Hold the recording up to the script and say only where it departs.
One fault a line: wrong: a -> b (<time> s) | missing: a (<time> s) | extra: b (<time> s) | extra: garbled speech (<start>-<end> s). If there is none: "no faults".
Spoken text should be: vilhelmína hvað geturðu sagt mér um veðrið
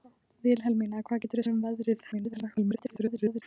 missing: sagt (1.5 s)
extra: garbled speech (2.1-3.4 s)